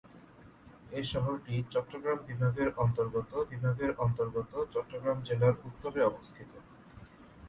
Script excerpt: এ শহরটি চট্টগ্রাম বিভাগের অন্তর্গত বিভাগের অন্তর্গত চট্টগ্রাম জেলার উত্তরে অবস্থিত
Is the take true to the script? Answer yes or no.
yes